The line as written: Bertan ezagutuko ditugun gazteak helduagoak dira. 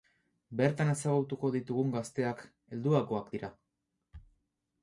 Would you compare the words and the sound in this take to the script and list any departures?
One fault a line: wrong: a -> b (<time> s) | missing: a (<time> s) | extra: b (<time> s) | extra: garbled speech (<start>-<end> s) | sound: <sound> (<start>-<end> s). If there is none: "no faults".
no faults